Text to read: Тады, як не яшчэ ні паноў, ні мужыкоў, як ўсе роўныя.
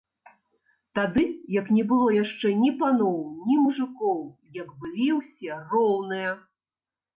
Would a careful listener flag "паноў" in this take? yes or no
no